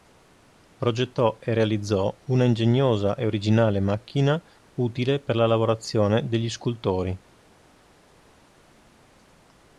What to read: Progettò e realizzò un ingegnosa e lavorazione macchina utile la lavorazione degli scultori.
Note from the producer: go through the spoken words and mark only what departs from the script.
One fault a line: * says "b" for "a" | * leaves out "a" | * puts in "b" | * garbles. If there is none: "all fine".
* says "una" for "un"
* says "originale" for "lavorazione"
* puts in "per"